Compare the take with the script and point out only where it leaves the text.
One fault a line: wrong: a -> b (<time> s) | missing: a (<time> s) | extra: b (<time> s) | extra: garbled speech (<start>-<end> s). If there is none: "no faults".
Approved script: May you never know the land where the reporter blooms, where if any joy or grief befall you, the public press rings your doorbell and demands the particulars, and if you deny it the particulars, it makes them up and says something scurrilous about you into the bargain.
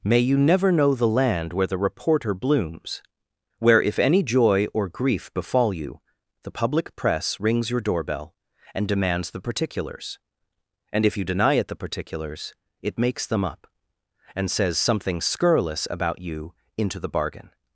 no faults